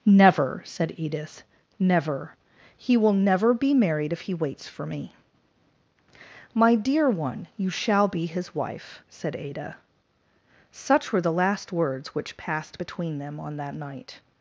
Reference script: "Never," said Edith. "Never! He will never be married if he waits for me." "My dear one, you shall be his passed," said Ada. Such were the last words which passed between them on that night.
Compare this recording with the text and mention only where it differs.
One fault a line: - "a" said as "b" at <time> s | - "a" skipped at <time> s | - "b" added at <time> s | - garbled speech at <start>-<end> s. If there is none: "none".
- "passed" said as "wife" at 8.5 s